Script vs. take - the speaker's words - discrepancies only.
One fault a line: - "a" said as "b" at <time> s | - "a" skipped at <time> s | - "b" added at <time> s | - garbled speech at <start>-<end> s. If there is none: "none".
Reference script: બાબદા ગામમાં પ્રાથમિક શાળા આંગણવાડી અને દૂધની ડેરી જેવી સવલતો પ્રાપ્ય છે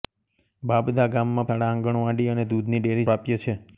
- "પ્રાથમિક" skipped at 1.5 s
- "જેવી સવલતો" skipped at 3.1 s